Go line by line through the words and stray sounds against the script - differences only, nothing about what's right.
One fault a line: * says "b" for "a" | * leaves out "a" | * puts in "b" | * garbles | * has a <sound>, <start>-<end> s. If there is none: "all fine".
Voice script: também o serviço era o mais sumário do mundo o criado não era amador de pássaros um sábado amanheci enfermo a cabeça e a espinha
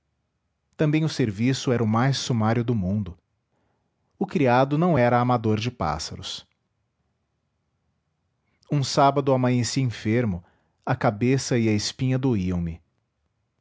all fine